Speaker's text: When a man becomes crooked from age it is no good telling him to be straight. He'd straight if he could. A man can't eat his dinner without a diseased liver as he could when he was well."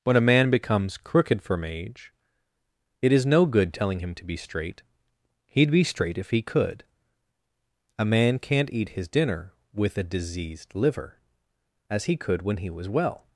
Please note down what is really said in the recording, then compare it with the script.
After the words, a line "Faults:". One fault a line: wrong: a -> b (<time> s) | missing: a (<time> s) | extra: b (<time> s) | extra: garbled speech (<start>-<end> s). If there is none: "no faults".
When a man becomes crooked from age it is no good telling him to be straight. He'd be straight if he could. A man can't eat his dinner with a diseased liver as he could when he was well."
Faults:
extra: be (5.7 s)
wrong: without -> with (9.7 s)